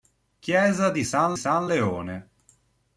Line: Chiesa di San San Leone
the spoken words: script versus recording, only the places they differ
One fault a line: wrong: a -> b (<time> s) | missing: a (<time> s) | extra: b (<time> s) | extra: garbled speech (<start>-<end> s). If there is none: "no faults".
no faults